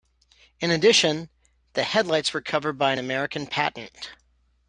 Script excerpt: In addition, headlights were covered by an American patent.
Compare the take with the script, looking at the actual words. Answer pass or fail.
fail